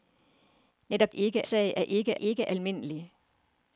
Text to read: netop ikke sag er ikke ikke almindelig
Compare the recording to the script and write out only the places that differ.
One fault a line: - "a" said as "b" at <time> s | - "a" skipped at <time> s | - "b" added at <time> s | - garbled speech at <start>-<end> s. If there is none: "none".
none